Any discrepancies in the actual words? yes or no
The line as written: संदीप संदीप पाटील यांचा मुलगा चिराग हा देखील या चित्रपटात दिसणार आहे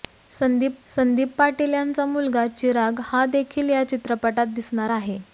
no